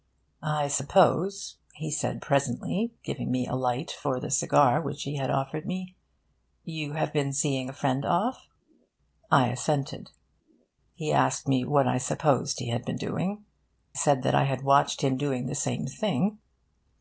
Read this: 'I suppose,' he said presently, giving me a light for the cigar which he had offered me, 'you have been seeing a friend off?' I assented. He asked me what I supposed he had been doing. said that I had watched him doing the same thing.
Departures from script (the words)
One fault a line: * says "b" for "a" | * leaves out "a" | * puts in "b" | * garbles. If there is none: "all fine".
all fine